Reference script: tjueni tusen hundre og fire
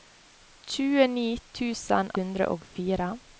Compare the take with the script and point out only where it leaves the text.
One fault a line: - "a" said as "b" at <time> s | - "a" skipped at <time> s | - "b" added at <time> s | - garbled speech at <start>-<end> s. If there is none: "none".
none